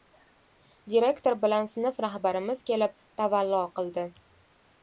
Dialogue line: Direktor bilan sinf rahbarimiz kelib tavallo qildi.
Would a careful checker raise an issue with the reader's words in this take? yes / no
no